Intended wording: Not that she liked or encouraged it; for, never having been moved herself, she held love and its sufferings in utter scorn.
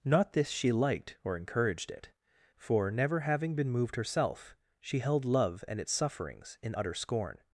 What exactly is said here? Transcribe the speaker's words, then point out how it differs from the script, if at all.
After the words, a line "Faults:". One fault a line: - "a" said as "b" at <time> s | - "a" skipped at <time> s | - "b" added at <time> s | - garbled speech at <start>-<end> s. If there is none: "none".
Not this she liked or encouraged it; for, never having been moved herself, she held love and its sufferings in utter scorn.
Faults:
- "that" said as "this" at 0.3 s